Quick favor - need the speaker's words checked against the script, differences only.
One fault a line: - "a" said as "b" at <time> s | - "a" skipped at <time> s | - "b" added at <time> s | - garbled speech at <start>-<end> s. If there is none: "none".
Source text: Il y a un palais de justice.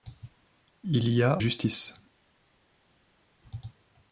- "un palais de" skipped at 1.4 s